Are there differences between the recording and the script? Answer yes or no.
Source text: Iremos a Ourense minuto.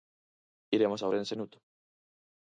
no